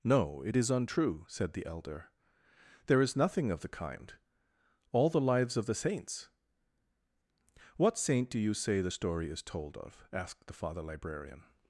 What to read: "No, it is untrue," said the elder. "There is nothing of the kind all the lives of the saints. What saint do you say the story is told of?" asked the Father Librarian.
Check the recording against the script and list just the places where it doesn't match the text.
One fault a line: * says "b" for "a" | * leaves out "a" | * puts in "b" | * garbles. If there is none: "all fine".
all fine